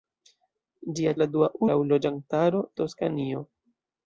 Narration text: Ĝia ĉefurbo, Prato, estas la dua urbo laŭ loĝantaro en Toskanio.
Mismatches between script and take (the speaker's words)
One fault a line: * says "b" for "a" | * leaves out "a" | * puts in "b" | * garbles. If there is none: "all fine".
* leaves out "ĉefurbo Prato estas"
* leaves out "urbo"
* leaves out "en"